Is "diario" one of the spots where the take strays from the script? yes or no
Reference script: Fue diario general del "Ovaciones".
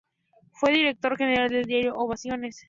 yes